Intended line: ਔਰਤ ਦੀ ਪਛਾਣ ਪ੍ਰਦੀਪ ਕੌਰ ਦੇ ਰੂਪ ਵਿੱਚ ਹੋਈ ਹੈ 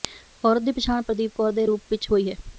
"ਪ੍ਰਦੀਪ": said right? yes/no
yes